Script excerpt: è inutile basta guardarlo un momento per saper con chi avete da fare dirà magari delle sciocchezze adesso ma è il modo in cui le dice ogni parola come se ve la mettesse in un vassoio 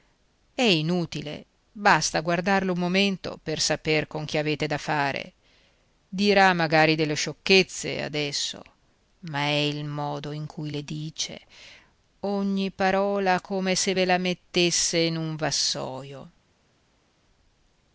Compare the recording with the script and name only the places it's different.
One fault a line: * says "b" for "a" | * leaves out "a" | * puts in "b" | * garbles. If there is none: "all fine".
all fine